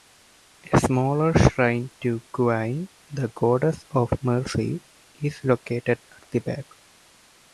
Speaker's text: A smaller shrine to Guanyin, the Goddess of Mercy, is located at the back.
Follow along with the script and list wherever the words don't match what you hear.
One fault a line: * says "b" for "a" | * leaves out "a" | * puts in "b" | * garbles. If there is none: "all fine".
all fine